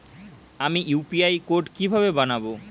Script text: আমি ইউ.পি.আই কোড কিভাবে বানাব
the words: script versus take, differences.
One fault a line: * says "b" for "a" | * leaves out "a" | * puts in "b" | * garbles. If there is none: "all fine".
all fine